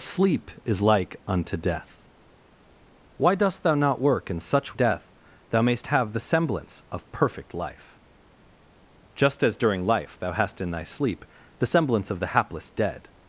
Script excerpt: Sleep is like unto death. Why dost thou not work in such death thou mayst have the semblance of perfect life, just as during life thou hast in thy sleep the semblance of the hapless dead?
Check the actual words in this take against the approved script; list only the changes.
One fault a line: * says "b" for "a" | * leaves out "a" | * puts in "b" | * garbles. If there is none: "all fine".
all fine